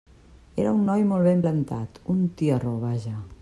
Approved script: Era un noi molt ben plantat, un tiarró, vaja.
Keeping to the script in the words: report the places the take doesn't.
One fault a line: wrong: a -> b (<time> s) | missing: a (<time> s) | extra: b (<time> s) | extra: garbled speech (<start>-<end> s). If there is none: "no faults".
no faults